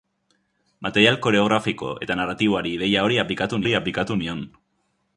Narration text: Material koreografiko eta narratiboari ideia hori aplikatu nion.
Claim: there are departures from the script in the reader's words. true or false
true